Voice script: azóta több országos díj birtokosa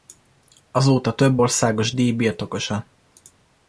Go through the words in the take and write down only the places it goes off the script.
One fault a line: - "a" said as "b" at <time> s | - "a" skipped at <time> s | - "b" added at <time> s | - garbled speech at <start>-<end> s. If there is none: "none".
none